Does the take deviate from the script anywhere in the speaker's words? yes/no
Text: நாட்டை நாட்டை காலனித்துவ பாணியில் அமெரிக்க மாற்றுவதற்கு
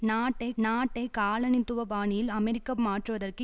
no